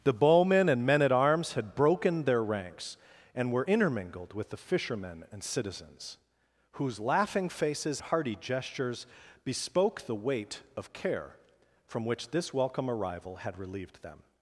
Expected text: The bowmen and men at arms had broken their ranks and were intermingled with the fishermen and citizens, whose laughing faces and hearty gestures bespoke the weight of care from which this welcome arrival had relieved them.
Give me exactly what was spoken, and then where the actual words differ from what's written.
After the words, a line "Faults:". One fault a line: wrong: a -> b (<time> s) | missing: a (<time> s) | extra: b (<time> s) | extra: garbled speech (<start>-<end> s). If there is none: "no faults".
The bowmen and men at arms had broken their ranks and were intermingled with the fishermen and citizens, whose laughing faces hearty gestures bespoke the weight of care from which this welcome arrival had relieved them.
Faults:
missing: and (8.0 s)